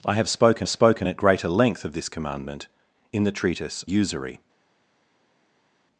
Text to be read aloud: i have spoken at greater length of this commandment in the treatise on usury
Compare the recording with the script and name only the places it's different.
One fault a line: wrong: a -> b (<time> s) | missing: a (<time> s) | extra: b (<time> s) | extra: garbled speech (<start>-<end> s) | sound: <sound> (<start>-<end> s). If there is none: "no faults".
extra: spoken (0.7 s)
missing: on (3.8 s)